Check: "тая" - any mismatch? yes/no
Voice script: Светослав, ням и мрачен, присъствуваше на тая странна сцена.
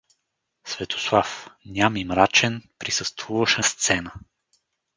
yes